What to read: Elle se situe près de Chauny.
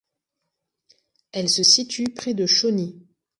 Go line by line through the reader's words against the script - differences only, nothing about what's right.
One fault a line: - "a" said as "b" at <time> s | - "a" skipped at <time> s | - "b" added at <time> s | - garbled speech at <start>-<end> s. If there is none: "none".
none